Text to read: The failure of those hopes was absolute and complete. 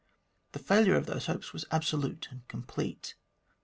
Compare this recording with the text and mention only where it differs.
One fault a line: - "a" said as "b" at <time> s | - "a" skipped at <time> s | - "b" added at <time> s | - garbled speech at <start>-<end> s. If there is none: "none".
none